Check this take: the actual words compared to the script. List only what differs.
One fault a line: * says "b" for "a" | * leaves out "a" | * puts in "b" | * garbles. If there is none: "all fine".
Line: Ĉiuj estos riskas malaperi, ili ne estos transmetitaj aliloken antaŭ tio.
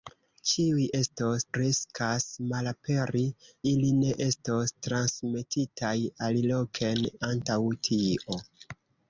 all fine